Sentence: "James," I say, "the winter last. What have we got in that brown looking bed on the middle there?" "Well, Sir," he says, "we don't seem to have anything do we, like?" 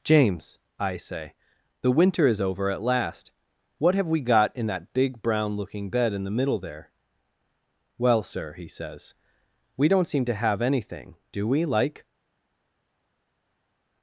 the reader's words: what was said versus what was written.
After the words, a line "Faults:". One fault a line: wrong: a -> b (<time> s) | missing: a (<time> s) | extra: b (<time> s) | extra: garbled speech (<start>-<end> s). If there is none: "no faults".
"James," I say, "the winter is over at last. What have we got in that big brown looking bed in the middle there?" "Well, Sir," he says, "we don't seem to have anything do we, like?"
Faults:
extra: is over at (2.2 s)
extra: big (4.9 s)
wrong: on -> in (6.1 s)